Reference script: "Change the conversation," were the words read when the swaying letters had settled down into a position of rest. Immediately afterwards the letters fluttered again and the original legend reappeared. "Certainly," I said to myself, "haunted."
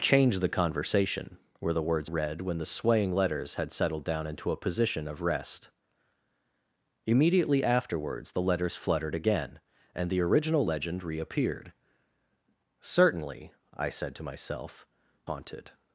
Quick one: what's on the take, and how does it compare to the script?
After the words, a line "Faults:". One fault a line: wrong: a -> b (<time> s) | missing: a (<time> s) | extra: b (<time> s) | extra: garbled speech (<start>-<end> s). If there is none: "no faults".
"Change the conversation," were the words read when the swaying letters had settled down into a position of rest. Immediately afterwards the letters fluttered again and the original legend reappeared. "Certainly," I said to myself, "haunted."
Faults:
no faults